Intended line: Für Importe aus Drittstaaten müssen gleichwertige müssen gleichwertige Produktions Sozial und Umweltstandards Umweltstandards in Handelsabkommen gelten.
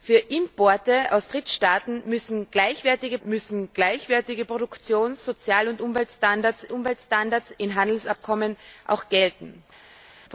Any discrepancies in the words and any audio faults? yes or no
no